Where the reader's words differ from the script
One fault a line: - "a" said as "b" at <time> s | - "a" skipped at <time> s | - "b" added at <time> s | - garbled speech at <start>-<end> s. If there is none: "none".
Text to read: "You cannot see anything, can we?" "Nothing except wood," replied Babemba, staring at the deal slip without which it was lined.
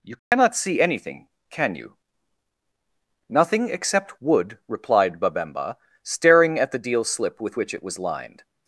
- "we" said as "you" at 1.8 s
- "without" said as "with" at 7.4 s